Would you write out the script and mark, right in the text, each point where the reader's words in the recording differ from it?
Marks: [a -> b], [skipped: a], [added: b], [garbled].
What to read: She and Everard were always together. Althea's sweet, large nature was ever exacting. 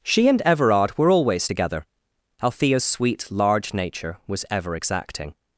She and Everard were always together. Althea's sweet, large nature was ever exacting.